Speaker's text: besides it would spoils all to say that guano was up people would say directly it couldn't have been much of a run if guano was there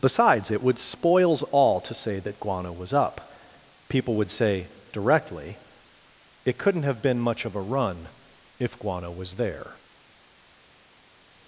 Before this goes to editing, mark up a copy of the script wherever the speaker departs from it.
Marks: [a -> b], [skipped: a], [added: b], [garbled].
besides it would spoils all to say that guano was up people would say directly it couldn't have been much of a run if guano was there